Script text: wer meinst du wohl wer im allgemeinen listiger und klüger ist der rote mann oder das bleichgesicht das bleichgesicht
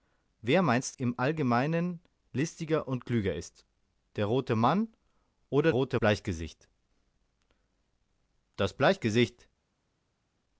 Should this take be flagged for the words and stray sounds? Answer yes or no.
yes